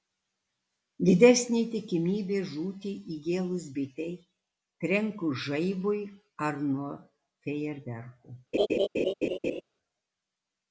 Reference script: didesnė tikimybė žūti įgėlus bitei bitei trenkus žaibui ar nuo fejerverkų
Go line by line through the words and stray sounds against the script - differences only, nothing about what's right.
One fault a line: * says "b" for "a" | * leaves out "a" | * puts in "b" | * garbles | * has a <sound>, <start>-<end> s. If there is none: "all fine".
* leaves out "bitei"
* has a laugh, 8.5-9.6 s